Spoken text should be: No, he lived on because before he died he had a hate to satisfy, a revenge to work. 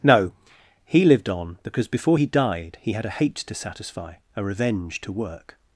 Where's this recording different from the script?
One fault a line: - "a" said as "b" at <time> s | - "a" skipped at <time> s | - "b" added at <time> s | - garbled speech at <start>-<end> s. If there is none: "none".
none